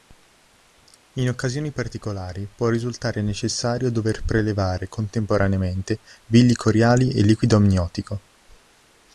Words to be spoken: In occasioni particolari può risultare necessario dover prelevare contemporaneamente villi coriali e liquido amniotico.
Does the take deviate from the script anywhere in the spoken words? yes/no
no